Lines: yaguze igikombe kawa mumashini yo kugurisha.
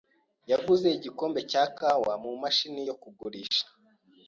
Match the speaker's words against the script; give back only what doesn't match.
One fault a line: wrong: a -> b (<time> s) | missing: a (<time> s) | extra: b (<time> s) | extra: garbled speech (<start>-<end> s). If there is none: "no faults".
extra: cya (1.5 s)